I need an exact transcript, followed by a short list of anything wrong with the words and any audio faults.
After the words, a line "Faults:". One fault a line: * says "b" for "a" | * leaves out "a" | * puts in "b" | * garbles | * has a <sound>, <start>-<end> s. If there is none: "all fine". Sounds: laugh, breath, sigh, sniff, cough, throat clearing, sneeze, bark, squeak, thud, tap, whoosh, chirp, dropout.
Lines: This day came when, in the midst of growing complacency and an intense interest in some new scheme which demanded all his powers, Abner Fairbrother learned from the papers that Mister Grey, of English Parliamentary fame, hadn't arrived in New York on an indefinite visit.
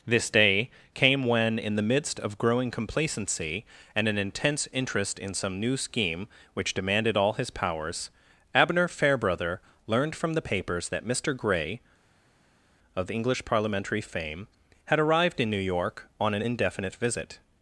This day came when, in the midst of growing complacency and an intense interest in some new scheme which demanded all his powers, Abner Fairbrother learned from the papers that Mister Grey, of English Parliamentary fame, had arrived in New York on an indefinite visit.
Faults:
* says "had" for "hadn't"